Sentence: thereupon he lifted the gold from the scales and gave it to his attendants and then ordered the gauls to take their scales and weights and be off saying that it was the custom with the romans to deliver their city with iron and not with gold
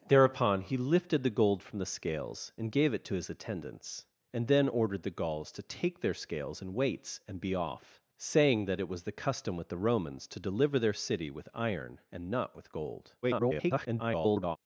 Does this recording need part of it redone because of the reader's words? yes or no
yes